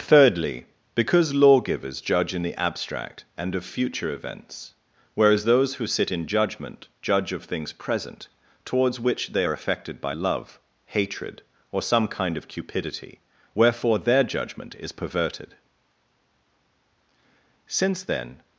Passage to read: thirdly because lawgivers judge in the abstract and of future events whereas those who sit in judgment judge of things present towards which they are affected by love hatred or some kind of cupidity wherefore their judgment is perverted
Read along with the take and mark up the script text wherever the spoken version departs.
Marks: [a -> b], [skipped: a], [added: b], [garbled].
thirdly because lawgivers judge in the abstract and of future events whereas those who sit in judgment judge of things present towards which they are affected by love hatred or some kind of cupidity wherefore their judgment is perverted [added: since then]